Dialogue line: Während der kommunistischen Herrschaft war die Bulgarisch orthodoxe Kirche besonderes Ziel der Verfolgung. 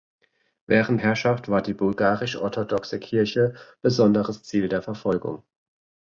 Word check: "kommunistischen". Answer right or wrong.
wrong